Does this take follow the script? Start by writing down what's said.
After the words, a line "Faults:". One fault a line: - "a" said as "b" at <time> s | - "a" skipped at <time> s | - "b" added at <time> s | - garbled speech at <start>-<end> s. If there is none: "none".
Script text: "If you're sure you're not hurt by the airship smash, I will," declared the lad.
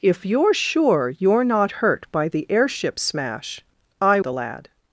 "If you're sure you're not hurt by the airship smash, I the lad.
Faults:
- "will declared" skipped at 4.2 s